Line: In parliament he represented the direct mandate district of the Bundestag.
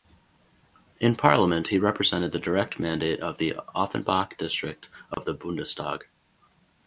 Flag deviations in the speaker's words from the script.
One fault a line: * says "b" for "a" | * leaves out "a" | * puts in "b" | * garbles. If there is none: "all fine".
* puts in "of the Offenbach"